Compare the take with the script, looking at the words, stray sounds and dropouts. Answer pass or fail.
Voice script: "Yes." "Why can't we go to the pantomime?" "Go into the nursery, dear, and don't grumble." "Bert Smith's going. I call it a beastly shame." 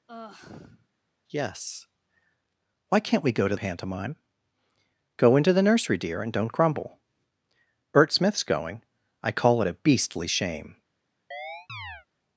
fail